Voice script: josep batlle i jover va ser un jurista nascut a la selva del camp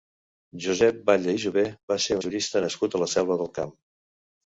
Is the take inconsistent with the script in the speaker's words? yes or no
yes